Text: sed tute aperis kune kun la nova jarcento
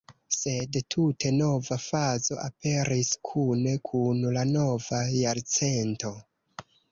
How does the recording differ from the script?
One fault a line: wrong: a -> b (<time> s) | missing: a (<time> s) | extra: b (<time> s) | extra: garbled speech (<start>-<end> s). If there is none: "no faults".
extra: nova fazo (1.4 s)